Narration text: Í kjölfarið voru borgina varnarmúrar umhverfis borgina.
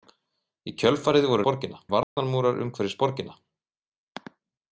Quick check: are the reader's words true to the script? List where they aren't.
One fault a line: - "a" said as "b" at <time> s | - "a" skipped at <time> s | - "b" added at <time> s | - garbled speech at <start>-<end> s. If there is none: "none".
none